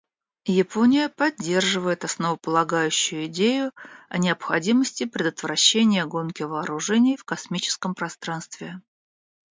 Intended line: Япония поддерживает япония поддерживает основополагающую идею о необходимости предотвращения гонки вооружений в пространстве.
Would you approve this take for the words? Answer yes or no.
no